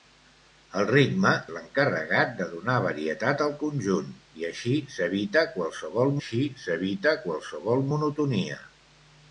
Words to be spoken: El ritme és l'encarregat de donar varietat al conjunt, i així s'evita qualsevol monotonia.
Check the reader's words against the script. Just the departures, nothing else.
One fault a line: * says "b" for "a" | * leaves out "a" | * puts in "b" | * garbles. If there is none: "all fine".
* leaves out "és"
* puts in "així s'evita qualsevol"